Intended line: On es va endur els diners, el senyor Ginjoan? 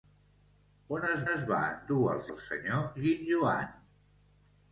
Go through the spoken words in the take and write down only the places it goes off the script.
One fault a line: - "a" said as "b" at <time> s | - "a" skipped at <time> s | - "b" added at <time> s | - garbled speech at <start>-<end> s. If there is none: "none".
- "es" added at 1.3 s
- "diners" skipped at 2.3 s